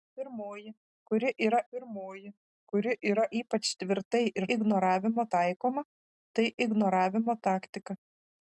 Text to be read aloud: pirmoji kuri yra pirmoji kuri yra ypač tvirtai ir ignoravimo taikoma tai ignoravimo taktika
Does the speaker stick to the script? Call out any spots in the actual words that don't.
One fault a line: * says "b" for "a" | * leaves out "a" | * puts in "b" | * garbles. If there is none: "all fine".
all fine